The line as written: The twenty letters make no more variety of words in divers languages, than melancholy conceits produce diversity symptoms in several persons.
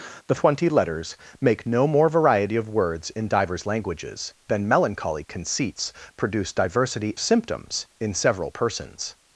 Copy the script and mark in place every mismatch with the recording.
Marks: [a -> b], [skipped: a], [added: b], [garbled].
The twenty letters make no more variety of words in divers languages, than melancholy conceits produce diversity symptoms in several persons.